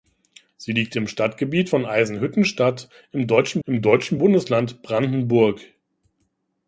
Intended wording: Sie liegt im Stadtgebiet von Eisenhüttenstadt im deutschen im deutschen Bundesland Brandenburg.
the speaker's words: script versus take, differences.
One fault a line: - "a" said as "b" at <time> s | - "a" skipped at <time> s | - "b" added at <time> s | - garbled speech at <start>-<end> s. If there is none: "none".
none